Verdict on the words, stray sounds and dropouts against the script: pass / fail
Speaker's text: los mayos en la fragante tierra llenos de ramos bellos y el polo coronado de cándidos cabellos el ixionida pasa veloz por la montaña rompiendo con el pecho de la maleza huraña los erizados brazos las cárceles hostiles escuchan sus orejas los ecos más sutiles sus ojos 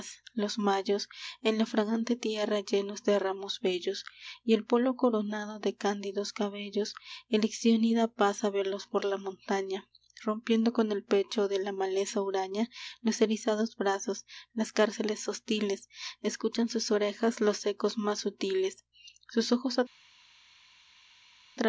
pass